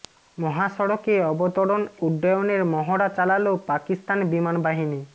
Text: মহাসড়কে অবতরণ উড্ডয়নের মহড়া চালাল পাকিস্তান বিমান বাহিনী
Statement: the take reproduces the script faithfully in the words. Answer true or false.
true